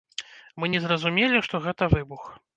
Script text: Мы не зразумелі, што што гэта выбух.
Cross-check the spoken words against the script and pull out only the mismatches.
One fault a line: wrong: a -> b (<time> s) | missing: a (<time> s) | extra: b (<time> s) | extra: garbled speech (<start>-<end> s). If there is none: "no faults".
missing: што (1.6 s)